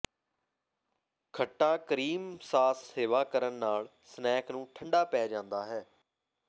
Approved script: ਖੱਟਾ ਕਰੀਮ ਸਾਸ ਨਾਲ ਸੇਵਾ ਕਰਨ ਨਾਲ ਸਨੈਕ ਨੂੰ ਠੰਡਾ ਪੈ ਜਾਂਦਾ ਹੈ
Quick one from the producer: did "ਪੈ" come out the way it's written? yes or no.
yes